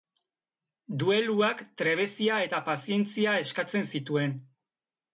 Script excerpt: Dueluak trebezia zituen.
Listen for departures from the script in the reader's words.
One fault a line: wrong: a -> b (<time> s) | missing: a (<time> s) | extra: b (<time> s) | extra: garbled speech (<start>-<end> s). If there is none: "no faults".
extra: eta pazientzia eskatzen (2.5 s)